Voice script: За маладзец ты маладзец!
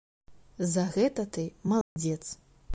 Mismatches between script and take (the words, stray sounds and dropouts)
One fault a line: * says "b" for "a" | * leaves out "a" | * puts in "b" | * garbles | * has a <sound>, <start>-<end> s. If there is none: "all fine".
* says "гэта" for "маладзец"
* has a dropout, 1.8-2.0 s